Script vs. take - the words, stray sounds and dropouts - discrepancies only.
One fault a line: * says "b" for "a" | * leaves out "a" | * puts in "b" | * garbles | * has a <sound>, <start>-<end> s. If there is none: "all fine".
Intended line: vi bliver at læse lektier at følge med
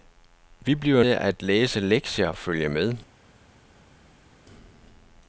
all fine